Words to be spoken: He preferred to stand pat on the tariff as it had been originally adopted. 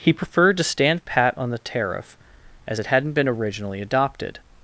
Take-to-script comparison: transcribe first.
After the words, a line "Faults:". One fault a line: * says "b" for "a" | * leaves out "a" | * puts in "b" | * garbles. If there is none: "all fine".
He preferred to stand pat on the tariff as it hadn't been originally adopted.
Faults:
* says "hadn't" for "had"